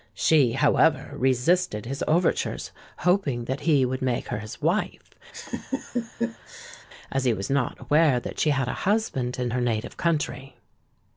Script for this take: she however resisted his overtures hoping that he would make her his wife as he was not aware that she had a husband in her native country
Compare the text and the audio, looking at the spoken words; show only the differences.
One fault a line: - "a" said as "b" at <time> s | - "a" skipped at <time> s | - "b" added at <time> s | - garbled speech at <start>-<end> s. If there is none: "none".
none